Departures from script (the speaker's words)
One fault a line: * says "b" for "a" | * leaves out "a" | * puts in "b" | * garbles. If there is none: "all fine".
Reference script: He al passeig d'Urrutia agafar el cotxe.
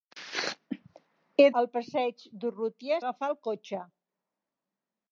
all fine